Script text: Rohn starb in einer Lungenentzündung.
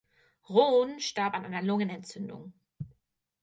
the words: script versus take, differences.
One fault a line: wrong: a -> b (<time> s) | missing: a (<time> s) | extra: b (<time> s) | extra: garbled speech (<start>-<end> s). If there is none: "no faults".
wrong: in -> an (1.3 s)